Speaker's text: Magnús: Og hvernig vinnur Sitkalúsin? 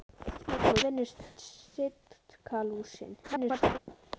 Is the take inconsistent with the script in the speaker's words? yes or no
yes